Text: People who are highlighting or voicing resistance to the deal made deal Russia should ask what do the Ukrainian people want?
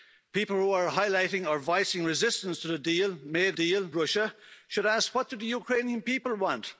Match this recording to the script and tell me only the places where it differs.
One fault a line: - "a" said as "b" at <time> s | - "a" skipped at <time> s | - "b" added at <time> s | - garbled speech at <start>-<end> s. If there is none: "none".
none